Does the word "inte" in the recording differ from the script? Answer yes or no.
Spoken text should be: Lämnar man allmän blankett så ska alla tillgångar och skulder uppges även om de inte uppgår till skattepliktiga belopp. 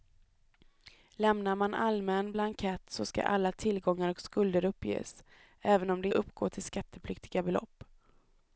yes